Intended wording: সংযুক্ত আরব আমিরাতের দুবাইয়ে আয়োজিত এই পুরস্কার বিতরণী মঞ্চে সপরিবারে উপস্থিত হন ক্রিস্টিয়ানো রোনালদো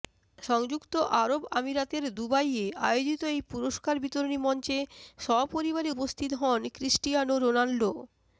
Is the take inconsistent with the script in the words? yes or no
no